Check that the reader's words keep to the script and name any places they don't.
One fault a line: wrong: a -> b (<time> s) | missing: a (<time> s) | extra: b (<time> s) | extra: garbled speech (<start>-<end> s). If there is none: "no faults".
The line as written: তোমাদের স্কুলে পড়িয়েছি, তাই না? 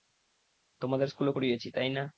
no faults